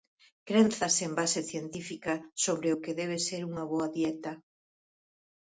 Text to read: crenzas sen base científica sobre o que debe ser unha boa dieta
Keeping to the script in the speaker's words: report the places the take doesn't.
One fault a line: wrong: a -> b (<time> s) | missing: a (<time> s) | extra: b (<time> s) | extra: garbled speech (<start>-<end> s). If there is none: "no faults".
no faults